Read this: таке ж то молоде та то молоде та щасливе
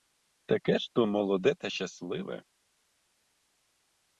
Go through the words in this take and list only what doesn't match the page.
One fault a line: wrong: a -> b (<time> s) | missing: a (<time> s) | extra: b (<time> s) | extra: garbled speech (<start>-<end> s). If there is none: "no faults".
missing: то молоде та (1.7 s)